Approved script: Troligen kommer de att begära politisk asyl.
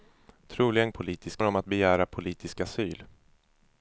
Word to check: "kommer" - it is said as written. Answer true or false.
false